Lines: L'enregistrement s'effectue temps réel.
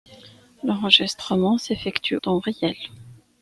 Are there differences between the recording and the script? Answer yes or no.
no